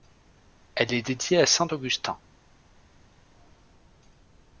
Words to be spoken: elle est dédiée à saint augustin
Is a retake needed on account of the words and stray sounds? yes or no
no